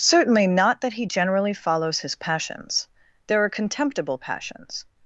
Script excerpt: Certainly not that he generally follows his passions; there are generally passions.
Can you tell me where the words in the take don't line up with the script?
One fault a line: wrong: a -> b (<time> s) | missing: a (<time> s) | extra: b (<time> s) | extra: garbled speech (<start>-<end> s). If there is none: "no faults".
wrong: generally -> contemptible (3.5 s)